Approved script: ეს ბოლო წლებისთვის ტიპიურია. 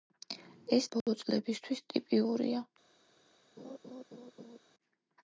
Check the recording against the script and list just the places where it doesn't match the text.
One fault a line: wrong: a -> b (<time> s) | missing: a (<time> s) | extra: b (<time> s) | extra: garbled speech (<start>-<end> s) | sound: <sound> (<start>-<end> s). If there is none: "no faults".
sound: dropout (1.0-1.1 s)
sound: laugh (3.6-4.6 s)